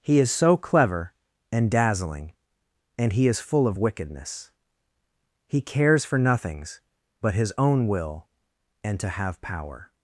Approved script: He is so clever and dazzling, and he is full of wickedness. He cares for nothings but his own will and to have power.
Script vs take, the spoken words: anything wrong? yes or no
no